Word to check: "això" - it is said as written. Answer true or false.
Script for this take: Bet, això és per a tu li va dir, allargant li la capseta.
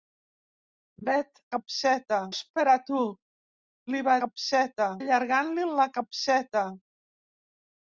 false